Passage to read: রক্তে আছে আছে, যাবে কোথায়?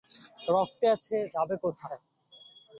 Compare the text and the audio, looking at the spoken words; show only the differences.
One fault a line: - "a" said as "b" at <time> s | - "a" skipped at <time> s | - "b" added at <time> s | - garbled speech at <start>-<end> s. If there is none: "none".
- "আছে" skipped at 1.1 s